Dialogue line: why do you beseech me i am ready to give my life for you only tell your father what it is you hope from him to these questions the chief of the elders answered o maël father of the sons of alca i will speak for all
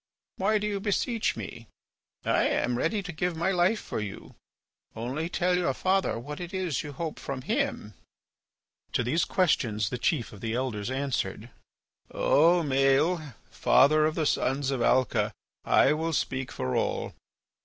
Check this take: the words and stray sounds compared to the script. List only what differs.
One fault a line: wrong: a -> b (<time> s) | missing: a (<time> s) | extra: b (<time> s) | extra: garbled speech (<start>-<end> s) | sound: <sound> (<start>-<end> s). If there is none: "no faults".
no faults